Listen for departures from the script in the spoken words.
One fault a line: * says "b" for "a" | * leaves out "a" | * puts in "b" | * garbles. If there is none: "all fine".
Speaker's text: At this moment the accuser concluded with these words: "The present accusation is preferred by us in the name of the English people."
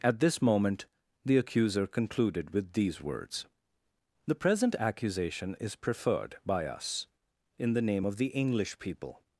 all fine